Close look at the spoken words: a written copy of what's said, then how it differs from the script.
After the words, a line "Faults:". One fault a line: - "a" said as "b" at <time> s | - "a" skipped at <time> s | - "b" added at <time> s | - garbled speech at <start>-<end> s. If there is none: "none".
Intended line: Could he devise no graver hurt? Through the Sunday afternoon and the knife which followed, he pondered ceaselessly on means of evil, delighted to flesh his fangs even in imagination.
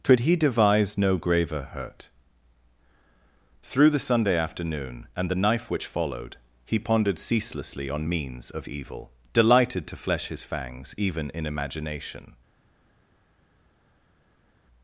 Could he devise no graver hurt? Through the Sunday afternoon and the knife which followed, he pondered ceaselessly on means of evil, delighted to flesh his fangs even in imagination.
Faults:
none